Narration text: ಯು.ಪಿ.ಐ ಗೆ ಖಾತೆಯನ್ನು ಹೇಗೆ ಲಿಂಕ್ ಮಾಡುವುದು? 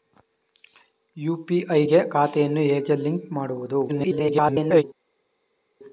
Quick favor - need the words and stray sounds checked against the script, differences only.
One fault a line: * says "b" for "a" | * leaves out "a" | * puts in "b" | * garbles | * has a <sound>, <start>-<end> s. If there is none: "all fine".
* garbles